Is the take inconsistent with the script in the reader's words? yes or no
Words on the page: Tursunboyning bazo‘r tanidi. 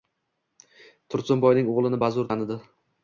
yes